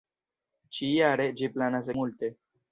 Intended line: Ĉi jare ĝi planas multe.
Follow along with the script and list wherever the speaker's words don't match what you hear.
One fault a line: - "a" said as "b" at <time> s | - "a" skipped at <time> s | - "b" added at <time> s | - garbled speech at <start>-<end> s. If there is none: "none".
none